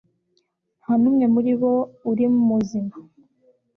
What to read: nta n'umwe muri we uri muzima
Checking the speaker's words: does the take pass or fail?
fail